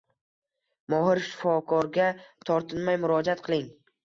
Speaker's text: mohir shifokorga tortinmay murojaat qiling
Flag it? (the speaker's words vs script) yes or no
no